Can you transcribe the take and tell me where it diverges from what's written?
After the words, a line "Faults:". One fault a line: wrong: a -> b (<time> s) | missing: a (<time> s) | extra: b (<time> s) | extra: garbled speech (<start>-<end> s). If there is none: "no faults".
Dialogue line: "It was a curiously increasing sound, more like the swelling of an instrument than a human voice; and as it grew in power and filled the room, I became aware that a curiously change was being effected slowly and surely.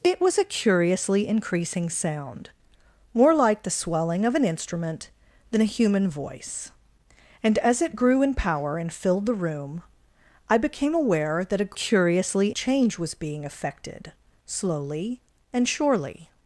"It was a curiously increasing sound, more like the swelling of an instrument than a human voice; and as it grew in power and filled the room, I became aware that a curiously change was being effected slowly and surely.
Faults:
no faults